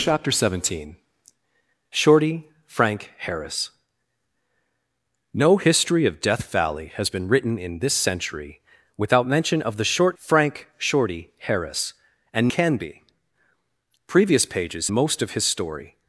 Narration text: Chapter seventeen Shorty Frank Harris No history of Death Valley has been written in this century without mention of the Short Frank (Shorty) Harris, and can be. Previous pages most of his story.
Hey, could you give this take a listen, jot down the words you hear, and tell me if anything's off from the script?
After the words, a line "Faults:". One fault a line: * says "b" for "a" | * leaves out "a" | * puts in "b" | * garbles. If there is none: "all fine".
Chapter seventeen Shorty Frank Harris No history of Death Valley has been written in this century without mention of the Short Frank (Shorty) Harris, and can be. Previous pages most of his story.
Faults:
all fine